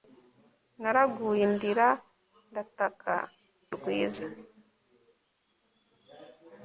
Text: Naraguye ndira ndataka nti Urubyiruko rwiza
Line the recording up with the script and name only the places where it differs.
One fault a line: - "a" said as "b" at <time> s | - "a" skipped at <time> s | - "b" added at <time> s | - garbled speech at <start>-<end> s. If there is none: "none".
- "nti Urubyiruko" skipped at 3.1 s